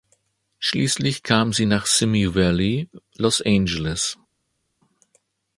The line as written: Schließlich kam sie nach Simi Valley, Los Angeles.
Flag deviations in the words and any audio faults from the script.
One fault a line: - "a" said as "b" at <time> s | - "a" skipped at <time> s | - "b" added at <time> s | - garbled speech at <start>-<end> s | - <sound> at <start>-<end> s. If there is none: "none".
none